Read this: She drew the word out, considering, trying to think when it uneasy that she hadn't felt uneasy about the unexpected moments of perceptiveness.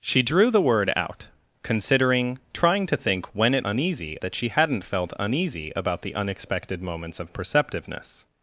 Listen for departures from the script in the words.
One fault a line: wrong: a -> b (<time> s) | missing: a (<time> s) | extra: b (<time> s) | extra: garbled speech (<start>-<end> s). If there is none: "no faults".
no faults